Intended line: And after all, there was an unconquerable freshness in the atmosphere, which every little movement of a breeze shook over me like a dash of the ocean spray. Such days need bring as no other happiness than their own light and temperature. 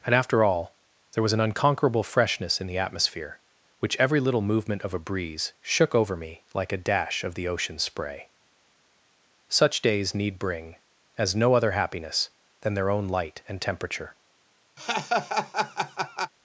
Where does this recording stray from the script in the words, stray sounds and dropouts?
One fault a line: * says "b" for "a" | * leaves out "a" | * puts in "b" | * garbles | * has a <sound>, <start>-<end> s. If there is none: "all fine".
* has a laugh, 14.8-16.3 s